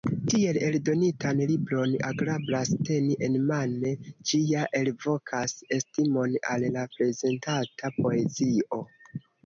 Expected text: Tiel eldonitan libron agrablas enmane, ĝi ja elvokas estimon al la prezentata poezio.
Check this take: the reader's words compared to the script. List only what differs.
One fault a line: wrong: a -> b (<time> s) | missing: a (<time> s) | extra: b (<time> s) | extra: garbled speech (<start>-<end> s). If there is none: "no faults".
extra: teni (2.9 s)